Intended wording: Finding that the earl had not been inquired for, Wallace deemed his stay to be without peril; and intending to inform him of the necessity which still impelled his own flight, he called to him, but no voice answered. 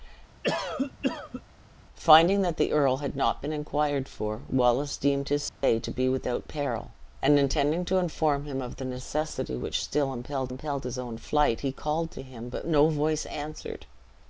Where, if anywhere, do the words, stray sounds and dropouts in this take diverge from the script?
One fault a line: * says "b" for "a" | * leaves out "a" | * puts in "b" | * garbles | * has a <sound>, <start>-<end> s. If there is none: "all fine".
* has a cough, 0.4-1.4 s
* has a dropout, 5.5-5.6 s
* puts in "impelled"